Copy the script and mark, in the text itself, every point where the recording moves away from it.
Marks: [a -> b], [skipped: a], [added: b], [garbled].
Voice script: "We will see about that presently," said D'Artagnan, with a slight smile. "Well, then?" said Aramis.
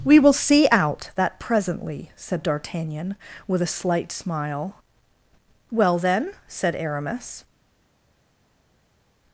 "We will see [about -> out] that presently," said D'Artagnan, with a slight smile. "Well, then?" said Aramis.